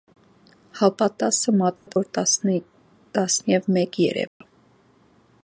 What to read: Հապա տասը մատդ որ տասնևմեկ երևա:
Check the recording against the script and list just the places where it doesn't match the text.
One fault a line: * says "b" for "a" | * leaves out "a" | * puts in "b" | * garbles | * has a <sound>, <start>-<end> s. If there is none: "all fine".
* has a dropout, 1.8-1.9 s
* has a dropout, 4.3-4.4 s